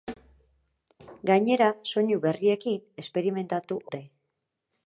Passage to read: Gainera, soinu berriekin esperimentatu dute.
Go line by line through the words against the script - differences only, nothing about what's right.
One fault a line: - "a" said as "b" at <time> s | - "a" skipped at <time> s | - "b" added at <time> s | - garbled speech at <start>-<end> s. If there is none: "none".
none